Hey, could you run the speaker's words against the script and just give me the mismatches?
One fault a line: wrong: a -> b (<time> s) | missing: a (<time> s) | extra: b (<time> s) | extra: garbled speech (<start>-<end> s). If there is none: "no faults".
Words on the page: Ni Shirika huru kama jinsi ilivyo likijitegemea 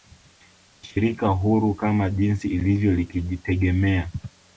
no faults